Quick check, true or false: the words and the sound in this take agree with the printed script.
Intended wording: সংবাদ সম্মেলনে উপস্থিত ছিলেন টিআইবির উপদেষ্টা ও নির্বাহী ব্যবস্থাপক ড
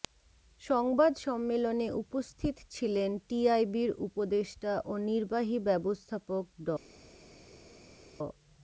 true